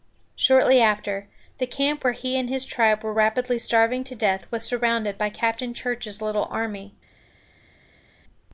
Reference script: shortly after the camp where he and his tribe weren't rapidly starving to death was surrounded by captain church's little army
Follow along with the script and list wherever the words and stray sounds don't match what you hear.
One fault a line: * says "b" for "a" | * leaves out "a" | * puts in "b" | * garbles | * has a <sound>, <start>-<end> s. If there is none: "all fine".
* says "were" for "weren't"